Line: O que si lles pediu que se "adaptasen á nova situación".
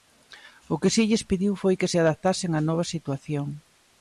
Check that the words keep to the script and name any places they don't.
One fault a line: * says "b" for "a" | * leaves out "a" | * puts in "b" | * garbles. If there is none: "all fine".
* puts in "foi"